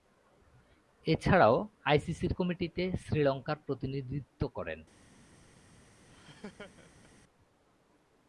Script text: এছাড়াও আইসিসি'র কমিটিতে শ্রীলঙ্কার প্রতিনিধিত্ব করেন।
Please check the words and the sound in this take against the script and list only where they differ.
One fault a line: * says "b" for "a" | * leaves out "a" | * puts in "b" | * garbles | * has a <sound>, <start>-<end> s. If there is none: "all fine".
* has a laugh, 6.1-7.1 s